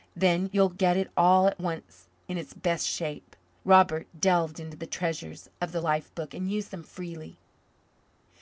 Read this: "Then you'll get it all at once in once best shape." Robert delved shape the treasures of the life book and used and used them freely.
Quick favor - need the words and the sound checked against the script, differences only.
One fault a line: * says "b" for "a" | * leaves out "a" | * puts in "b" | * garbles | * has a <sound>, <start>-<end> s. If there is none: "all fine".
* says "its" for "once"
* says "into" for "shape"
* leaves out "and used"